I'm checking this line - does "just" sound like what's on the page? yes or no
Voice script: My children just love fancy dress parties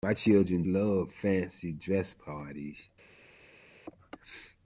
no